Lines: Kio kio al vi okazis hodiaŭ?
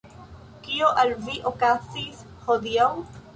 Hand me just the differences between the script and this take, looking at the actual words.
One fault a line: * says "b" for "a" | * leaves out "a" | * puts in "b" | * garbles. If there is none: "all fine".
* leaves out "kio"